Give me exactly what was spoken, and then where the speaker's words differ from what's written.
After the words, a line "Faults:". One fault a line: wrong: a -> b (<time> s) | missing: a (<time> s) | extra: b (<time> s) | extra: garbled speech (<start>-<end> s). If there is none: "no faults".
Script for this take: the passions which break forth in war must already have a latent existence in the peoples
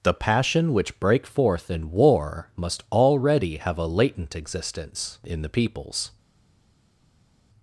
the passion which break forth in war must already have a latent existence in the peoples
Faults:
wrong: passions -> passion (0.1 s)